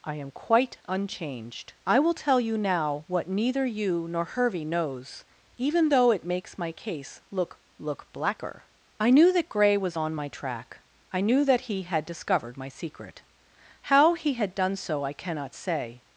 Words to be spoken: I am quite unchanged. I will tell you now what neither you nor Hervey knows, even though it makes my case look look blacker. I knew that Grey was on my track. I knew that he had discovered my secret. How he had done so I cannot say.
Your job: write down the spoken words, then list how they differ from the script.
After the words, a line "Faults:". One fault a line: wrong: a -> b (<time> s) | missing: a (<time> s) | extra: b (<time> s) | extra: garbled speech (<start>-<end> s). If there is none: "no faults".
I am quite unchanged. I will tell you now what neither you nor Hervey knows, even though it makes my case look look blacker. I knew that Grey was on my track. I knew that he had discovered my secret. How he had done so I cannot say.
Faults:
no faults